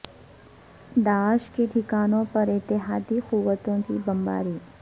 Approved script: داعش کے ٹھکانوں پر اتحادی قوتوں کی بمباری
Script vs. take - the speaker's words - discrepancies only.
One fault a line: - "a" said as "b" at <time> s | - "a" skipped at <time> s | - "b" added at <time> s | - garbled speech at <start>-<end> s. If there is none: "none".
none